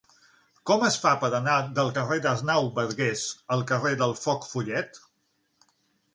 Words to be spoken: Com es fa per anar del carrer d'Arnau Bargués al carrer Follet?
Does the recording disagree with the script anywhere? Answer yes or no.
yes